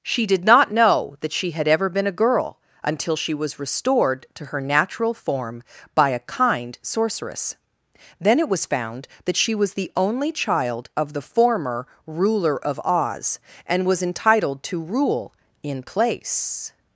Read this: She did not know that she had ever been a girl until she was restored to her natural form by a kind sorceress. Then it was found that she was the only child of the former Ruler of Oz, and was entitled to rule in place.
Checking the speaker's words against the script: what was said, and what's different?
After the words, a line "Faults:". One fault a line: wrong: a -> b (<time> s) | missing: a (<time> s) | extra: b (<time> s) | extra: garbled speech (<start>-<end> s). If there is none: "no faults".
She did not know that she had ever been a girl until she was restored to her natural form by a kind sorceress. Then it was found that she was the only child of the former Ruler of Oz, and was entitled to rule in place.
Faults:
no faults